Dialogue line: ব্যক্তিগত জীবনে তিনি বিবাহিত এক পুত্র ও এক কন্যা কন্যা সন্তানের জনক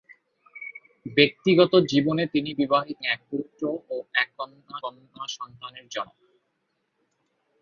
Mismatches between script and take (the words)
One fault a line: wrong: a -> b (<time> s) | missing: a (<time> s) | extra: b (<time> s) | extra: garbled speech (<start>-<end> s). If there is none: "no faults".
no faults